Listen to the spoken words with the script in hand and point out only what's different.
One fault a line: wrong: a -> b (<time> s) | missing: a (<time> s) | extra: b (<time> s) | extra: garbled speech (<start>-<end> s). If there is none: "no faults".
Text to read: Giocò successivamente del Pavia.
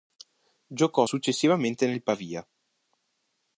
wrong: del -> nel (1.9 s)